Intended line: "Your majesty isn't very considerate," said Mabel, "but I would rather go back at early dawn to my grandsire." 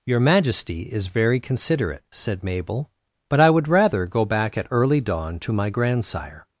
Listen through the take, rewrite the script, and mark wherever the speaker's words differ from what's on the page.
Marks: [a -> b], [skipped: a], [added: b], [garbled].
"Your majesty [isn't -> is] very considerate," said Mabel, "but I would rather go back at early dawn to my grandsire."